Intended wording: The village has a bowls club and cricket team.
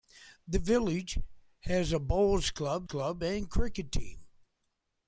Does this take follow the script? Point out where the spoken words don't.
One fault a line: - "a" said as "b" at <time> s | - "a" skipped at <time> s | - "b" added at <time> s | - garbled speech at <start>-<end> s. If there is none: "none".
- "club" added at 2.8 s